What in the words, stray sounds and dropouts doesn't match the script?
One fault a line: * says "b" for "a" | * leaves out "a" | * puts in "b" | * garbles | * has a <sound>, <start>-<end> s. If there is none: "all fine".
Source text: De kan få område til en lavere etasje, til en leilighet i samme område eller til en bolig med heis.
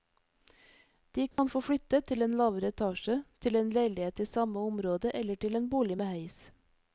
* has a dropout, 1.3-1.4 s
* says "flytte" for "område"